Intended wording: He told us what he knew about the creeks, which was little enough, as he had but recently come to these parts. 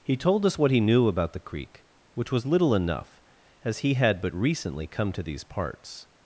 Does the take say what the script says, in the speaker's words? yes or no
no